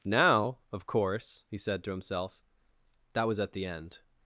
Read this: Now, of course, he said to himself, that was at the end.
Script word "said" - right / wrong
right